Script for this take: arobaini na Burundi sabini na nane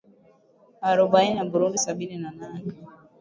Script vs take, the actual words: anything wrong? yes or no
no